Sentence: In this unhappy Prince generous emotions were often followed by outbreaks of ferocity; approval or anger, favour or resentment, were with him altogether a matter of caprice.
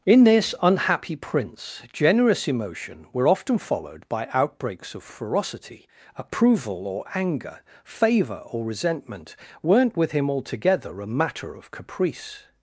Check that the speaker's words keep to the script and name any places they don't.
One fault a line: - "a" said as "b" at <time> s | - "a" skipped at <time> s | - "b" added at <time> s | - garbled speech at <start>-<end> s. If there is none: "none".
- "emotions" said as "emotion" at 2.5 s
- "were" said as "weren't" at 9.6 s